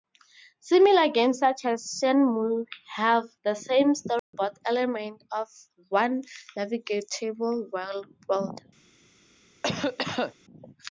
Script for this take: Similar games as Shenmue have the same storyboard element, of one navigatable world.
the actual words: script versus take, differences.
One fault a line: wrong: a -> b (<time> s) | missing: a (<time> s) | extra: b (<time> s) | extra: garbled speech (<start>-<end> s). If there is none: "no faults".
extra: such (1.4 s)